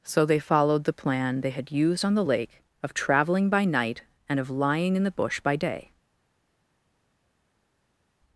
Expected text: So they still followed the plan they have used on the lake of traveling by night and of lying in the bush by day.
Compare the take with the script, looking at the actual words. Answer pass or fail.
fail